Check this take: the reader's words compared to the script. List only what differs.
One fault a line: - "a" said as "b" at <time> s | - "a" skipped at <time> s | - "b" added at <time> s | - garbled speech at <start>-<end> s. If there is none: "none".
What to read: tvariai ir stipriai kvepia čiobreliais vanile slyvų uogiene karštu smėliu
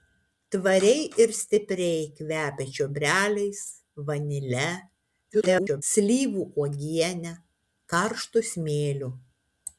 - garbled speech at 5.3-5.8 s